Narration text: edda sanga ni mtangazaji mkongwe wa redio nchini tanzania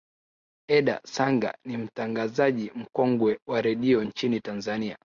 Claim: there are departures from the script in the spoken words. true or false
false